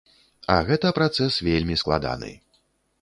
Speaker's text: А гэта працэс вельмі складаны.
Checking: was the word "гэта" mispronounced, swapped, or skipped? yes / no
no